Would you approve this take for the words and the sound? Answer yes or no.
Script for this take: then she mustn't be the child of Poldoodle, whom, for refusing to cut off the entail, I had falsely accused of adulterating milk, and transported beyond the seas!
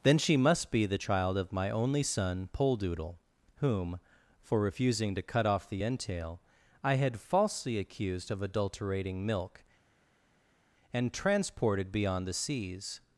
no